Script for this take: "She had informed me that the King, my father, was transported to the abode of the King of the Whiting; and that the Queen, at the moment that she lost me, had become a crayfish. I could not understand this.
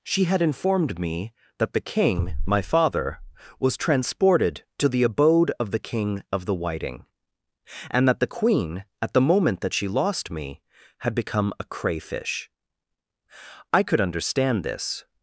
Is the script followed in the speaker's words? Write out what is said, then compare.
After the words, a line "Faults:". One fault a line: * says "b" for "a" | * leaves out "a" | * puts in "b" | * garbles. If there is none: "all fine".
"She had informed me that the King, my father, was transported to the abode of the King of the Whiting; and that the Queen, at the moment that she lost me, had become a crayfish. I could understand this.
Faults:
* leaves out "not"